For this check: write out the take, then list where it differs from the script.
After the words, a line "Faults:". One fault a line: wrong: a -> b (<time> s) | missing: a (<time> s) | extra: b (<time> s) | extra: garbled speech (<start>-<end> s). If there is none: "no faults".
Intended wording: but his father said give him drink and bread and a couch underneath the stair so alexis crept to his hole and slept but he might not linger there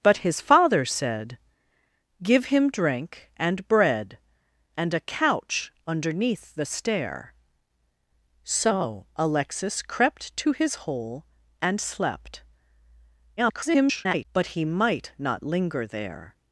but his father said give him drink and bread and a couch underneath the stair so alexis crept to his hole and slept [garbled] but he might not linger there
Faults:
extra: garbled speech (13.4-14.2 s)